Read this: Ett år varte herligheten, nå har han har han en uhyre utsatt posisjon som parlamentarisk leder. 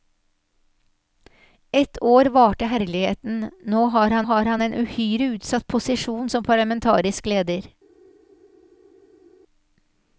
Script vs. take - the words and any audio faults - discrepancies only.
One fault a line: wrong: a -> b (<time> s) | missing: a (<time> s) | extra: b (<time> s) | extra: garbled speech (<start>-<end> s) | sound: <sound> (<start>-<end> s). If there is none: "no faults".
no faults